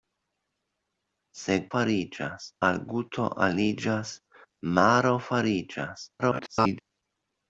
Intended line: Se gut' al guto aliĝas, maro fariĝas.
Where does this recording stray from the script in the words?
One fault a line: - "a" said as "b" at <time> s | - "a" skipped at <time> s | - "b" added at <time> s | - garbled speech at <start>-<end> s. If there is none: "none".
- "gut" said as "fariĝas" at 1.7 s
- garbled speech at 6.2-6.8 s